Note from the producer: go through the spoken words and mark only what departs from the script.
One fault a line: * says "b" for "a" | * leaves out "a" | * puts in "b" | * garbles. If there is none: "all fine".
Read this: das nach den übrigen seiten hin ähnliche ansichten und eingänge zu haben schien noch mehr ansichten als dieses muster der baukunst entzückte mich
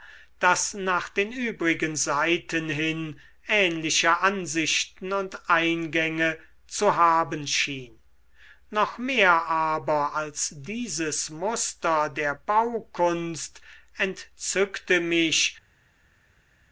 * says "aber" for "ansichten"